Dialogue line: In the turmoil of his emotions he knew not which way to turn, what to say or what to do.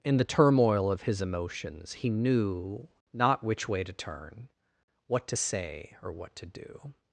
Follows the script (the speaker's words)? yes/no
yes